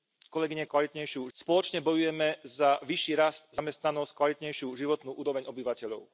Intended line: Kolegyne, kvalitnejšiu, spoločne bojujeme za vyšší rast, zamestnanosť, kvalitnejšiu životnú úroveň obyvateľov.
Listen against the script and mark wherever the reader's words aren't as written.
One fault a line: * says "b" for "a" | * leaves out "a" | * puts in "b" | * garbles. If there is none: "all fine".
all fine